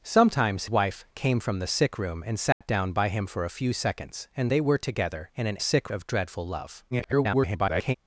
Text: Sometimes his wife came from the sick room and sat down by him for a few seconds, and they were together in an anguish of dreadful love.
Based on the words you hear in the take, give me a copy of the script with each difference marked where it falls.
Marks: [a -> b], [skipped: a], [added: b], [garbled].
Sometimes [skipped: his] wife came from the sick room and sat down by him for a few seconds, and they were together in an [anguish -> sick] of dreadful love. [garbled]